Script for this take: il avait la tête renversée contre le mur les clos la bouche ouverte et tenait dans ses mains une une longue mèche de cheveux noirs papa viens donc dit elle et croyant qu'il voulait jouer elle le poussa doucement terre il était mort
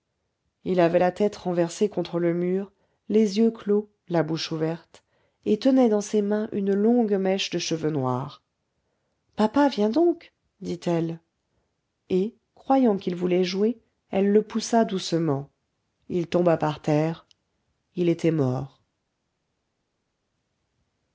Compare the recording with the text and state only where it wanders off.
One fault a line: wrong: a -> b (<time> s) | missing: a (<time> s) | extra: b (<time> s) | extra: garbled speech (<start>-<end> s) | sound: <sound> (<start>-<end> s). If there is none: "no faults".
extra: yeux (3.4 s)
missing: une (6.7 s)
extra: il tomba par (16.1 s)